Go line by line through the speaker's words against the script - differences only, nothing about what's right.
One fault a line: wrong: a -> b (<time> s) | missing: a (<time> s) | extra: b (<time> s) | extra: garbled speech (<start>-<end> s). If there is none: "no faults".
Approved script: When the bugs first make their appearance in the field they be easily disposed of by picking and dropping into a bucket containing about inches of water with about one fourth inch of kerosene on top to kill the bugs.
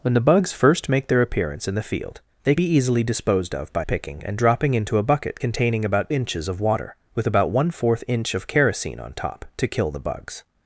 no faults